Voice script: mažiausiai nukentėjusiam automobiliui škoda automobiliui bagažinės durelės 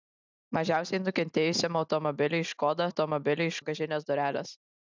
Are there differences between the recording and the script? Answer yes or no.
no